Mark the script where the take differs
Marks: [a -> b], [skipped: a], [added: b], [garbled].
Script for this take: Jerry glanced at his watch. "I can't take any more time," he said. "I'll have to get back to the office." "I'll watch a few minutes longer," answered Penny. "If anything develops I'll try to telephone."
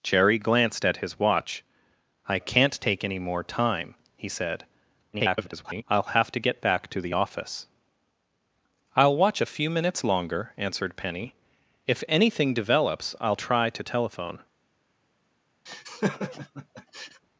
Jerry glanced at his watch. "I can't take any more time," he said. [garbled] "I'll have to get back to the office." "I'll watch a few minutes longer," answered Penny. "If anything develops I'll try to telephone."